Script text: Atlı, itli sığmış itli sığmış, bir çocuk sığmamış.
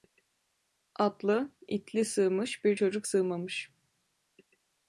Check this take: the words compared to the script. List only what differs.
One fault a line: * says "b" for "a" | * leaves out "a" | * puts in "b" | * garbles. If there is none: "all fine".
* leaves out "itli sığmış"